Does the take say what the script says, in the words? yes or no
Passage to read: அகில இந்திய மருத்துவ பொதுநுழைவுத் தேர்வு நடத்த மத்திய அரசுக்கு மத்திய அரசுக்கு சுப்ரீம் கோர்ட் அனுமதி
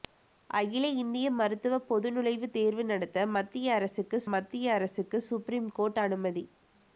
yes